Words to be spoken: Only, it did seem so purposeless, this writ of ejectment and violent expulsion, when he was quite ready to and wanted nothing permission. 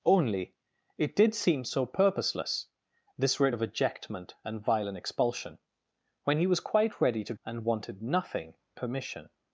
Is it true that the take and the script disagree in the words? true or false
false